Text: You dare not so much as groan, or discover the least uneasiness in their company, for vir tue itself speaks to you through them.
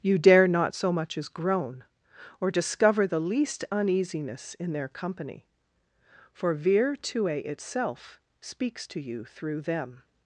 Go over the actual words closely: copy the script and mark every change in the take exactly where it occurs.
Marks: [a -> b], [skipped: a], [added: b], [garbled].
You dare not so much as groan, or discover the least uneasiness in their company, for vir tue itself speaks to you through them.